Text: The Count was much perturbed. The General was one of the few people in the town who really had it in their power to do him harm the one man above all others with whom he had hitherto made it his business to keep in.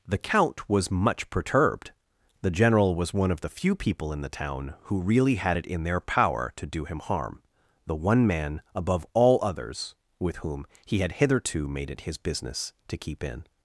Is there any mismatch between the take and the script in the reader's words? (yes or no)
no